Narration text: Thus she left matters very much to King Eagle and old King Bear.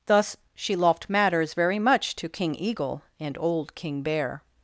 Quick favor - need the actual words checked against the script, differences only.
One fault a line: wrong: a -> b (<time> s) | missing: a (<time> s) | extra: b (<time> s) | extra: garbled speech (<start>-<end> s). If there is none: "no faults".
no faults